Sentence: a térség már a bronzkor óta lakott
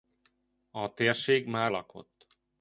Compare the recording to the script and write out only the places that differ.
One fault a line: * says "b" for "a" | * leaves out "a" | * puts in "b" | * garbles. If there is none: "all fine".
* leaves out "a bronzkor óta"